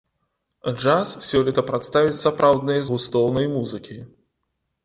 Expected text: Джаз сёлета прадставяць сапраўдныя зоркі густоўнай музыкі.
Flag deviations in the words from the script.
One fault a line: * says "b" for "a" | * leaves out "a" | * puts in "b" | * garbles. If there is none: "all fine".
* leaves out "зоркі"